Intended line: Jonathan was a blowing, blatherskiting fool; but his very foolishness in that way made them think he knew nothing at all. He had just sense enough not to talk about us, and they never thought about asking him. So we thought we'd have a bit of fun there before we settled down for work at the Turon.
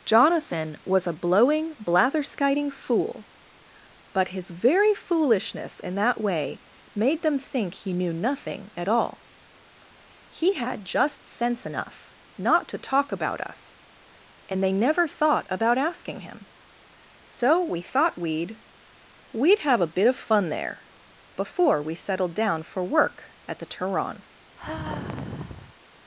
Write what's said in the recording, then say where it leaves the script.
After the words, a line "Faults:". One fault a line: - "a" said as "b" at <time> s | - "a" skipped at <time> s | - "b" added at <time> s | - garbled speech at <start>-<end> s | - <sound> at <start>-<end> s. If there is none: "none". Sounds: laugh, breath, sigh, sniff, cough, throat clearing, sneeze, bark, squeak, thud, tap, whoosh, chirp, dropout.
Jonathan was a blowing, blatherskiting fool; but his very foolishness in that way made them think he knew nothing at all. He had just sense enough not to talk about us, and they never thought about asking him. So we thought we'd we'd have a bit of fun there before we settled down for work at the Turon.
Faults:
- "we'd" added at 19.3 s
- sigh at 24.6-25.7 s